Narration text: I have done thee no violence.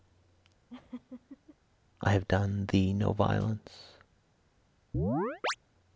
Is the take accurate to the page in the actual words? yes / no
yes